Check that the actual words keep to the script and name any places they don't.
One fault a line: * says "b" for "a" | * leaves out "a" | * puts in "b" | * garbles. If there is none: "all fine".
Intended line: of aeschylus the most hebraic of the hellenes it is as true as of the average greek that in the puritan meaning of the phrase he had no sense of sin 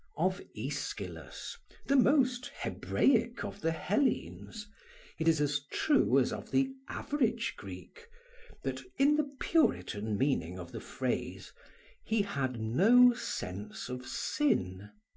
all fine